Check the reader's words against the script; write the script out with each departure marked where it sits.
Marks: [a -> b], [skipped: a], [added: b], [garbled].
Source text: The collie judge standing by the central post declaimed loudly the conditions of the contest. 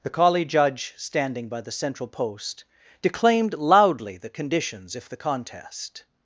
The collie judge standing by the central post declaimed loudly the conditions [of -> if] the contest.